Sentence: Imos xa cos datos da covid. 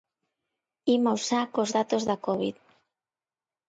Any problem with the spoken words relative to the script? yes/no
no